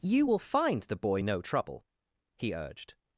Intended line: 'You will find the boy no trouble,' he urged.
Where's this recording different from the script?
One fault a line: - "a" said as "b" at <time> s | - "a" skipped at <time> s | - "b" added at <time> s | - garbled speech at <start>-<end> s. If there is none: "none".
none